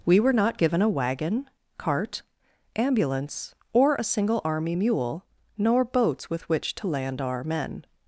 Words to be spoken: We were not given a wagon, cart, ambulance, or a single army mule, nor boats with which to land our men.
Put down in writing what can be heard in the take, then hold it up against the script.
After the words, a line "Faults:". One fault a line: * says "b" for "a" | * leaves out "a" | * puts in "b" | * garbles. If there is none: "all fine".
We were not given a wagon, cart, ambulance, or a single army mule, nor boats with which to land our men.
Faults:
all fine